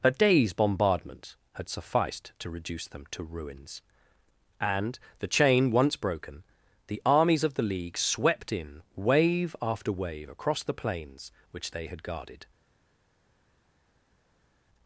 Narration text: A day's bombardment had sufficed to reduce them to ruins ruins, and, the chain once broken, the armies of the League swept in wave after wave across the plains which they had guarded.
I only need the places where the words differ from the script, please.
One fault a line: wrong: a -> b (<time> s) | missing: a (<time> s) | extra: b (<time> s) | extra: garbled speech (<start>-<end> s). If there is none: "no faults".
missing: ruins (3.8 s)